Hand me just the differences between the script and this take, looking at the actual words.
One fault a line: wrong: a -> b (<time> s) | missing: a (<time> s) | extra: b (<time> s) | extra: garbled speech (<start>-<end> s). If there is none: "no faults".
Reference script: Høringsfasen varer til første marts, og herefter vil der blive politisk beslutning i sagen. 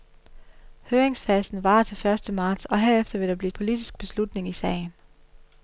no faults